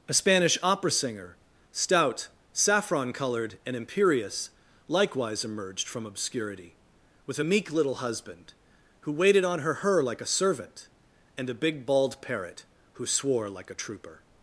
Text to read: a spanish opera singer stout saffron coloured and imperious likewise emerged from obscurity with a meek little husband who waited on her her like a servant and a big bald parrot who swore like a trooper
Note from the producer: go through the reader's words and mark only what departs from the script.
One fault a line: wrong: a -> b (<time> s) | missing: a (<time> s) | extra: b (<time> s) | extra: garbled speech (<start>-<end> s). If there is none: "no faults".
no faults